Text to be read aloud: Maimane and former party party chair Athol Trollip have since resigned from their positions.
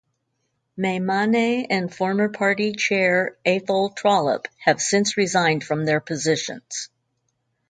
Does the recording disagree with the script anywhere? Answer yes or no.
yes